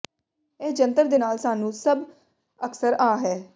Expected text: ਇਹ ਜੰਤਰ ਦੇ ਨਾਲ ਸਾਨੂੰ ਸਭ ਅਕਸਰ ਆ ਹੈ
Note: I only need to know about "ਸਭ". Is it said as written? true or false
true